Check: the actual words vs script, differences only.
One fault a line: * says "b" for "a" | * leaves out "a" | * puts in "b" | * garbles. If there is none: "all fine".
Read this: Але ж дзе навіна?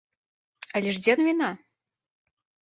all fine